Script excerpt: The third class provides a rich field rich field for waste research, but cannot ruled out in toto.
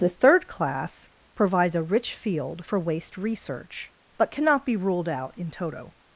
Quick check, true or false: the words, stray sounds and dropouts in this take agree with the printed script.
false